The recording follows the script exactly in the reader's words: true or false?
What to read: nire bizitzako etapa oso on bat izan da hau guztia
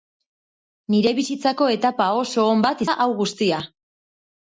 false